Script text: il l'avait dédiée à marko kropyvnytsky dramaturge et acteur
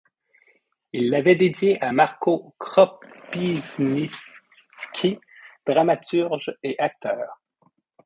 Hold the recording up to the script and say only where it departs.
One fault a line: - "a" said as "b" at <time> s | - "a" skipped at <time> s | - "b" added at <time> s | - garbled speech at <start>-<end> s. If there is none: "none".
none